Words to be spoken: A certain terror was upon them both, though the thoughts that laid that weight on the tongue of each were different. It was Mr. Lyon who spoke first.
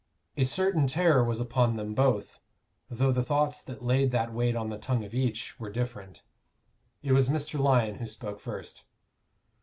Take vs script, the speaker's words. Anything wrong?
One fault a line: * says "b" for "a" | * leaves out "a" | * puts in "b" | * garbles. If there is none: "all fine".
all fine